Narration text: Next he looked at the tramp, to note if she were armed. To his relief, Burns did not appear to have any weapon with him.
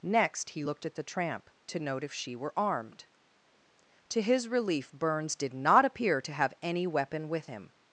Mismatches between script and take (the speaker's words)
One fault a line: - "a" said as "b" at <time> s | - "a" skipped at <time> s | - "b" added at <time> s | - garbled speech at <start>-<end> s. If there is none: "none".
none